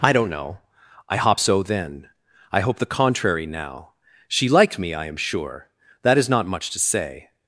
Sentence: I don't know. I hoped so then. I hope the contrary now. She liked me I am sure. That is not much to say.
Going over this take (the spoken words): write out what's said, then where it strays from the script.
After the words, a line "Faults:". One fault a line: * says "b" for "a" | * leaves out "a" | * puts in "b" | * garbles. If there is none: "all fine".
I don't know. I hop so then. I hope the contrary now. She liked me I am sure. That is not much to say.
Faults:
* says "hop" for "hoped"